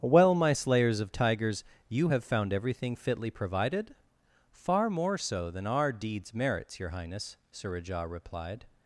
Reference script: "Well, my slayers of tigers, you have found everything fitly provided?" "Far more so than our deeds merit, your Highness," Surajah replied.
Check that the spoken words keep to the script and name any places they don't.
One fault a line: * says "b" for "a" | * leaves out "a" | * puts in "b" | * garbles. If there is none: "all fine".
* says "merits" for "merit"